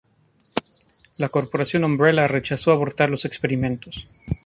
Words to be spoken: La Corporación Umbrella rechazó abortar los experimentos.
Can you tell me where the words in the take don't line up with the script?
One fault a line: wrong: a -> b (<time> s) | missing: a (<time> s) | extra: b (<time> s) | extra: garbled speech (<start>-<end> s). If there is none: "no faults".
no faults